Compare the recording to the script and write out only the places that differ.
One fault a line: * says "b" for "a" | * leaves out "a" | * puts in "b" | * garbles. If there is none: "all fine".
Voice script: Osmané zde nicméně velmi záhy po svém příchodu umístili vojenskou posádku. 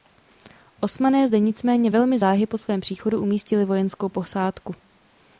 all fine